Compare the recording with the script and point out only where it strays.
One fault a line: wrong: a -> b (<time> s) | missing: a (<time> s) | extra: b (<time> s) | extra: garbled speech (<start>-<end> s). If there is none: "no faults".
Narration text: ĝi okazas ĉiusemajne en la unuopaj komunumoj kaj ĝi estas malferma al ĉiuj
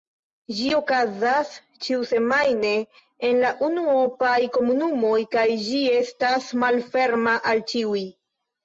no faults